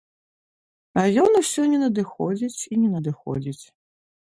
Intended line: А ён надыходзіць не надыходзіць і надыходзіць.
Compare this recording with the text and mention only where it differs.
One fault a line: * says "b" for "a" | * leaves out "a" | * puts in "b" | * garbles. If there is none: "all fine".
* says "усё" for "надыходзіць"
* puts in "не"